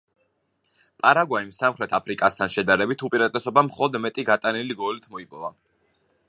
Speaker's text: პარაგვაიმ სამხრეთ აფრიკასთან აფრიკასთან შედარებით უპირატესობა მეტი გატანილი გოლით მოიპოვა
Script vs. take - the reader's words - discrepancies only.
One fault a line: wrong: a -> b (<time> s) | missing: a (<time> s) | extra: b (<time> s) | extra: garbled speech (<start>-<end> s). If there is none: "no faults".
missing: აფრიკასთან (2.5 s)
extra: მხოლოდ (3.7 s)